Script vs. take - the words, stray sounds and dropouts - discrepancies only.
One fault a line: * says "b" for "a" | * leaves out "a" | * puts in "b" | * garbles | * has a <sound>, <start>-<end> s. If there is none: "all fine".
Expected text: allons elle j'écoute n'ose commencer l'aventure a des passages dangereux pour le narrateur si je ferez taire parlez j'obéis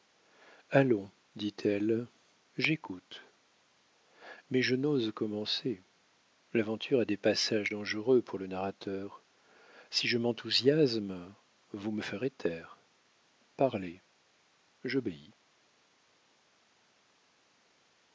* puts in "dit"
* puts in "mais je"
* puts in "m'enthousiasme vous me"